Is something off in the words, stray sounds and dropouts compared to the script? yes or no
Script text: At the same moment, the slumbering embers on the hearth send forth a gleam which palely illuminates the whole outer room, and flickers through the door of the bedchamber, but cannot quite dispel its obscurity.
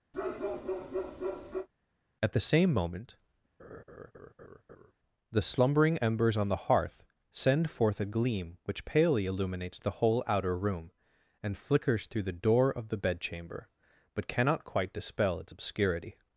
yes